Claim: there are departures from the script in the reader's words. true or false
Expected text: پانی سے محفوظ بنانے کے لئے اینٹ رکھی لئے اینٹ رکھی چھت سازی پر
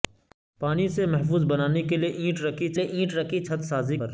false